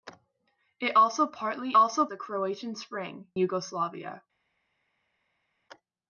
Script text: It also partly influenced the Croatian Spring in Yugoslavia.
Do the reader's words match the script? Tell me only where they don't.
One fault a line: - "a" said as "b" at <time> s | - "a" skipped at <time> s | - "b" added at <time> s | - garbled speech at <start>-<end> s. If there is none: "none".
- "influenced" said as "also" at 1.7 s
- "in" skipped at 3.3 s